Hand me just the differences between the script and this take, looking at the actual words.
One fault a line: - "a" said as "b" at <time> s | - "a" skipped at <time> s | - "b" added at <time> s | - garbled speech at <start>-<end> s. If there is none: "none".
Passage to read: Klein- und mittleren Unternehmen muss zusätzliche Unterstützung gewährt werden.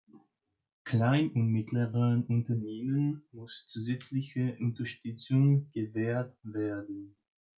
none